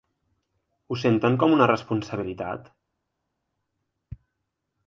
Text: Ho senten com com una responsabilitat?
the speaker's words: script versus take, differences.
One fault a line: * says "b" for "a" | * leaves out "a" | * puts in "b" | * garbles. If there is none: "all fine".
* leaves out "com"